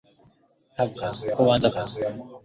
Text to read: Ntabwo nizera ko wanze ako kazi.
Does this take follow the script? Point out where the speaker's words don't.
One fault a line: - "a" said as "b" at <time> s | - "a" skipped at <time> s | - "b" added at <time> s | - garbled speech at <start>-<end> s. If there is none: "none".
- "nizera" said as "kazi" at 1.0 s
- "ako" skipped at 1.7 s